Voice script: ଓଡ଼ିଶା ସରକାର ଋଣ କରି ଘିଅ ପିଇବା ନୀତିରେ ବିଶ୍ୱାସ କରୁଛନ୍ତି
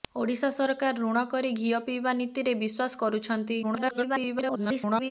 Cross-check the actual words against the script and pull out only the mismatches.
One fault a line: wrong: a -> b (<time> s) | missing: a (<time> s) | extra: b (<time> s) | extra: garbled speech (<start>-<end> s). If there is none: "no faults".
extra: garbled speech (3.6-5.1 s)